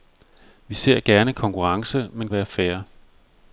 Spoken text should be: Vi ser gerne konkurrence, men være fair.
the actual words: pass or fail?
pass